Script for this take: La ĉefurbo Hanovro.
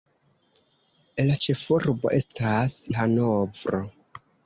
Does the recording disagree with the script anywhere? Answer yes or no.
yes